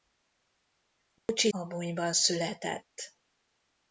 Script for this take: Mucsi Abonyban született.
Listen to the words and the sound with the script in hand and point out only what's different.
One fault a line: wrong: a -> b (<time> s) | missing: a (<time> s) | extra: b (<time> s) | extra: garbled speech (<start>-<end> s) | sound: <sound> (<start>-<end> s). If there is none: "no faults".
sound: dropout (1.2-1.3 s)